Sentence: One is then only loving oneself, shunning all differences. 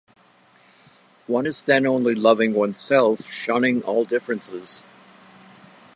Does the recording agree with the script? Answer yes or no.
yes